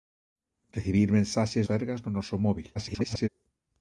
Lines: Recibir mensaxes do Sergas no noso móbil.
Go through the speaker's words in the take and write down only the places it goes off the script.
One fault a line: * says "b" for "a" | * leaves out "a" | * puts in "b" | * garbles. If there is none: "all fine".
* leaves out "do"
* garbles